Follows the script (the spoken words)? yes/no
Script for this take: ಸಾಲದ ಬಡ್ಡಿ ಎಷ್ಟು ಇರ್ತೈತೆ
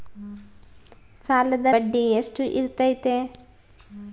yes